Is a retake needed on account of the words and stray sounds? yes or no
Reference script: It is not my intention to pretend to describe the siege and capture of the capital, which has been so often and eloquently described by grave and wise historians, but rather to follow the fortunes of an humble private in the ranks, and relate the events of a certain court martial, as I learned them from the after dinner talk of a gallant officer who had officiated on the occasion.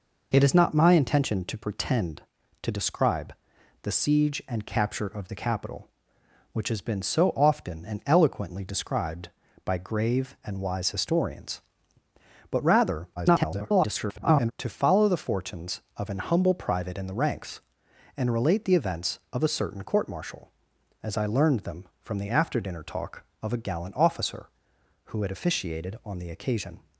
yes